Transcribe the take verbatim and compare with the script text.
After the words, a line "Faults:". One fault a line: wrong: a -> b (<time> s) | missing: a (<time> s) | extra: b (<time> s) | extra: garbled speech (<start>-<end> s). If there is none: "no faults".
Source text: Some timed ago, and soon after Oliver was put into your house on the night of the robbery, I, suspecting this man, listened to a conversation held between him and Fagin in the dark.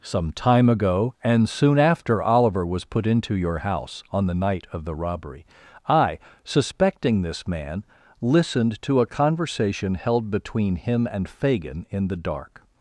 Some time ago, and soon after Oliver was put into your house on the night of the robbery, I, suspecting this man, listened to a conversation held between him and Fagin in the dark.
Faults:
wrong: timed -> time (0.3 s)